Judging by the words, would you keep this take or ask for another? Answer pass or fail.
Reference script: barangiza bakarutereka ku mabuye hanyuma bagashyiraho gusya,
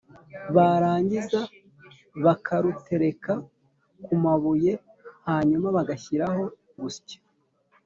pass